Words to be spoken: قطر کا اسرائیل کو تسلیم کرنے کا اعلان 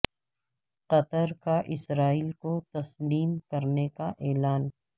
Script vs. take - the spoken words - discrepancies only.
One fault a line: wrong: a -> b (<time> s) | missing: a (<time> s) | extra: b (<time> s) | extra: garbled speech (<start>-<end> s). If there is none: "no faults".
no faults